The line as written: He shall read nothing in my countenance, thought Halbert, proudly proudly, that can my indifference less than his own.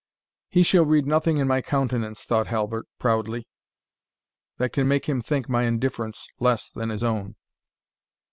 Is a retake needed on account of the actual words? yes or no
yes